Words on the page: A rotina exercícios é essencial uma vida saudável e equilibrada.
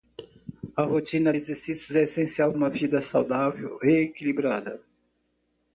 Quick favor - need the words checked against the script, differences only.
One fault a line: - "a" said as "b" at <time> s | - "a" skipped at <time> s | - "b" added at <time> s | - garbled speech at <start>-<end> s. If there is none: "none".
none